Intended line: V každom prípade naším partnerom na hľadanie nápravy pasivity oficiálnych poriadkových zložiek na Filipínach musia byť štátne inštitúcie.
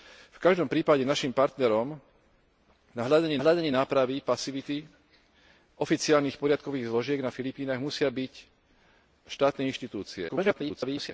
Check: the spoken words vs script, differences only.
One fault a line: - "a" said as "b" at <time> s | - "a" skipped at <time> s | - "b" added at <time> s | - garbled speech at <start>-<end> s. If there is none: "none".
- "hľadanie" added at 3.4 s
- garbled speech at 10.3-11.1 s